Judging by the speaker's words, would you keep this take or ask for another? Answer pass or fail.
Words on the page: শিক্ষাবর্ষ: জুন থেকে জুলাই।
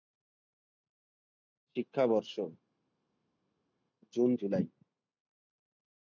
fail